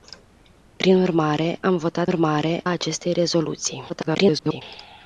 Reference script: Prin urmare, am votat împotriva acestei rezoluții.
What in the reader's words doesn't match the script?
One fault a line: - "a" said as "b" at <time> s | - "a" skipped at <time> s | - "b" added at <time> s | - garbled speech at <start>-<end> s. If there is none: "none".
- "împotriva" said as "urmare" at 2.1 s
- garbled speech at 3.9-4.6 s